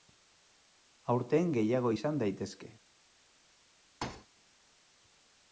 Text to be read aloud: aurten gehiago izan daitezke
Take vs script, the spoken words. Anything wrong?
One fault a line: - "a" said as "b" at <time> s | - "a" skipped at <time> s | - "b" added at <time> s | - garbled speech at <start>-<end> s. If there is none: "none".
none